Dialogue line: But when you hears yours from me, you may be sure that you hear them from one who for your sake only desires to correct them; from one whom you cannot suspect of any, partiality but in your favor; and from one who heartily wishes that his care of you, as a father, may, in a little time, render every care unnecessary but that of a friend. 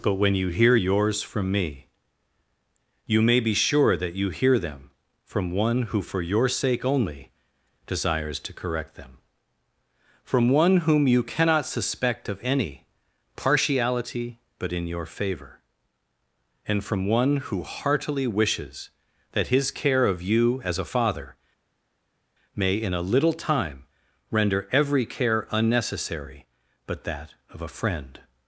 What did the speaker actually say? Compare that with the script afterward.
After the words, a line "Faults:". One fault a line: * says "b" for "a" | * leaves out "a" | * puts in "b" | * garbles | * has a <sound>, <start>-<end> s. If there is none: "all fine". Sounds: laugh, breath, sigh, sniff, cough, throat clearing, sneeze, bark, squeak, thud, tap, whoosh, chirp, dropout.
But when you hear yours from me, you may be sure that you hear them from one who for your sake only desires to correct them; from one whom you cannot suspect of any, partiality but in your favor; and from one who heartily wishes that his care of you, as a father, may, in a little time, render every care unnecessary but that of a friend.
Faults:
* says "hear" for "hears"